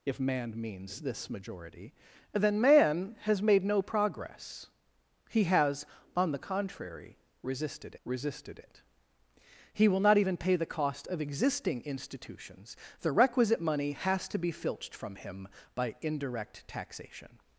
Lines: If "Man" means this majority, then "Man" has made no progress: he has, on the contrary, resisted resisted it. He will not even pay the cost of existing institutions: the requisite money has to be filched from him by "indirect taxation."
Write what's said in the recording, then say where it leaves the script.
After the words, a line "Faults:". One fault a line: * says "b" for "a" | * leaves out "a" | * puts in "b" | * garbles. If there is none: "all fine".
If "Man" means this majority, then "Man" has made no progress: he has, on the contrary, resisted resisted it. He will not even pay the cost of existing institutions: the requisite money has to be filched from him by "indirect taxation."
Faults:
all fine